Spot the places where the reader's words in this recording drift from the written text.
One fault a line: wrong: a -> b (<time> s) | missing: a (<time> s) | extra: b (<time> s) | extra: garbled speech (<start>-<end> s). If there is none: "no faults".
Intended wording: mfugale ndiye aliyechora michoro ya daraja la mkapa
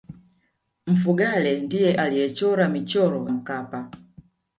missing: ya daraja la (3.3 s)